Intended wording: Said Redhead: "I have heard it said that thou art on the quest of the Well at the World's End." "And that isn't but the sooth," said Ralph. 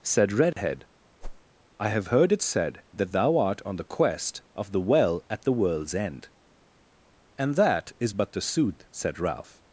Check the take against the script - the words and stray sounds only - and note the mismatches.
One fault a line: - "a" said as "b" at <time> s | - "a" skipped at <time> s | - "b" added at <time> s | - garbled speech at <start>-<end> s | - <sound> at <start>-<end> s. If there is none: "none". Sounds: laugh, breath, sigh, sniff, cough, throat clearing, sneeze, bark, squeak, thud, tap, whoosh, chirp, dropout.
- dropout at 0.5-0.6 s
- whoosh at 1.2-1.4 s
- "isn't" said as "is" at 8.0 s